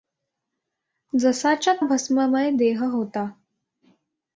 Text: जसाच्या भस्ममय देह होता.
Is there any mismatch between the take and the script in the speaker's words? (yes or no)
no